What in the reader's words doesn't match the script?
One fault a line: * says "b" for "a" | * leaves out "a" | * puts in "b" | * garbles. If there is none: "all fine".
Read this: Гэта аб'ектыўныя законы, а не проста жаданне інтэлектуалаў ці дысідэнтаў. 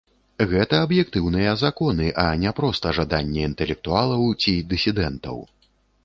all fine